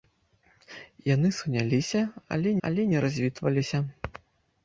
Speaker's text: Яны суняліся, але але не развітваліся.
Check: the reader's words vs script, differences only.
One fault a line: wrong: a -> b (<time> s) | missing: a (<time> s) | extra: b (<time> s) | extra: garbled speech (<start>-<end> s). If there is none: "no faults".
no faults